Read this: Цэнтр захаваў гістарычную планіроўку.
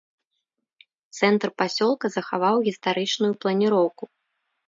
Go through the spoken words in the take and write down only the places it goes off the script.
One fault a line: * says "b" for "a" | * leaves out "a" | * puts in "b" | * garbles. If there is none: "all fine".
* puts in "пасёлка"